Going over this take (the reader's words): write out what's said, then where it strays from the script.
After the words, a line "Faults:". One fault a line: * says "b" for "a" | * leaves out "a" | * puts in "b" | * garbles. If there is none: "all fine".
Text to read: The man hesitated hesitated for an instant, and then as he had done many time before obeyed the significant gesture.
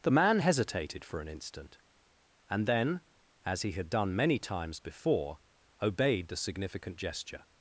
The man hesitated for an instant, and then as he had done many times before obeyed the significant gesture.
Faults:
* leaves out "hesitated"
* says "times" for "time"